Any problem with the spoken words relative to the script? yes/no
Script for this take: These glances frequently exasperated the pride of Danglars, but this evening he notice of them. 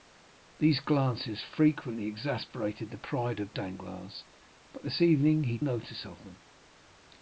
no